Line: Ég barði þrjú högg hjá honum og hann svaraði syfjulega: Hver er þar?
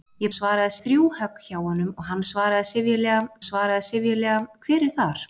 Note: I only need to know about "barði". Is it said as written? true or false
false